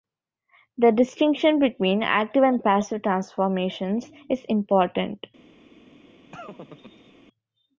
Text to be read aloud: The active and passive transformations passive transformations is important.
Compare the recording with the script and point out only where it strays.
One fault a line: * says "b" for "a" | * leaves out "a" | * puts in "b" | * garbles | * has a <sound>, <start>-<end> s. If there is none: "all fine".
* puts in "distinction between"
* leaves out "passive transformations"
* has a laugh, 6.3-7.1 s